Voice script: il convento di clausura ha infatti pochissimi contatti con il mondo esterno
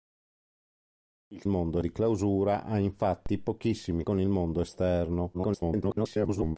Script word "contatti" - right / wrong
wrong